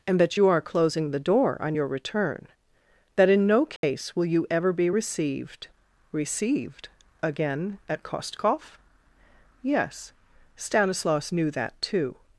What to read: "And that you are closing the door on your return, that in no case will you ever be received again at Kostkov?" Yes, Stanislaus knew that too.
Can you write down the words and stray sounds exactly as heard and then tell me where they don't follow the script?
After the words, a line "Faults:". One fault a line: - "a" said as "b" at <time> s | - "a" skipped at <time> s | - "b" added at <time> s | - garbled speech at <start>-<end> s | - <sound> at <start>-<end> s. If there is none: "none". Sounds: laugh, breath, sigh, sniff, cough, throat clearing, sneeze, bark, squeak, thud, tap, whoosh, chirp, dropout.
"And that you are closing the door on your return, that in no case will you ever be received received again at Kostkov?" Yes, Stanislaus knew that too.
Faults:
- dropout at 3.8-3.8 s
- "received" added at 6.1 s